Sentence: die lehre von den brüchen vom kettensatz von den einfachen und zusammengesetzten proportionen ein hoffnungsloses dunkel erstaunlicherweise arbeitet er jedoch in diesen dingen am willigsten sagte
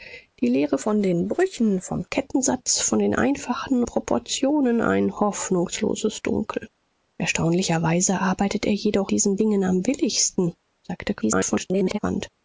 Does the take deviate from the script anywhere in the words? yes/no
yes